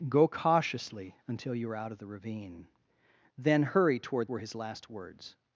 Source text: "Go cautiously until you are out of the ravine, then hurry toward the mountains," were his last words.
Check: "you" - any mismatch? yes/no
no